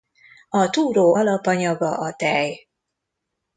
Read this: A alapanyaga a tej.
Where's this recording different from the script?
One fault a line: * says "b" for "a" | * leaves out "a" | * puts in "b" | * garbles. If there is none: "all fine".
* puts in "túró"